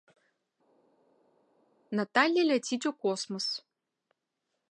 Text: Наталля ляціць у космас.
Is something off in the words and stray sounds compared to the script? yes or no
no